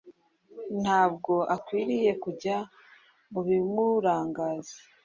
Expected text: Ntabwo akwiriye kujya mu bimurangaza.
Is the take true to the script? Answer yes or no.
yes